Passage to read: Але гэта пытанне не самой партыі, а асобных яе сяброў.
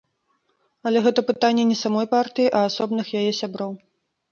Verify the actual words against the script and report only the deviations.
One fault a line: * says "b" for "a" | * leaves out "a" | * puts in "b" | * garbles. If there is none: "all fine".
all fine